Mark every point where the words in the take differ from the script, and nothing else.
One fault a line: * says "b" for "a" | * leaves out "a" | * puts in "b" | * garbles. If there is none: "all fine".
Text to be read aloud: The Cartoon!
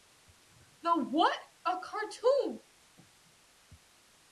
* puts in "What a"